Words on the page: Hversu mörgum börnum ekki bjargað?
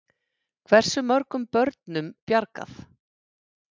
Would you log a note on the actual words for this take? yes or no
yes